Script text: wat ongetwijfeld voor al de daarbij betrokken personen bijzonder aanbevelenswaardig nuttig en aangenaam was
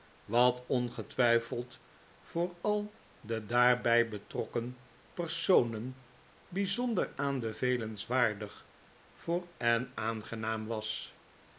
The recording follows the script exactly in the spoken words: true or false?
false